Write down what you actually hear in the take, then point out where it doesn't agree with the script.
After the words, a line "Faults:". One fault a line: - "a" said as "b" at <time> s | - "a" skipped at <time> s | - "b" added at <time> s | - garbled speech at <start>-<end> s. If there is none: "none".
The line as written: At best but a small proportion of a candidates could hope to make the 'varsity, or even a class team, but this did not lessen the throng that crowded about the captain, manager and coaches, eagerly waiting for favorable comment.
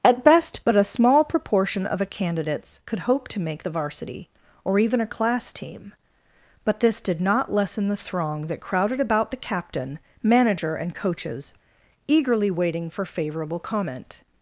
At best but a small proportion of a candidates could hope to make the 'varsity, or even a class team, but this did not lessen the throng that crowded about the captain, manager and coaches, eagerly waiting for favorable comment.
Faults:
none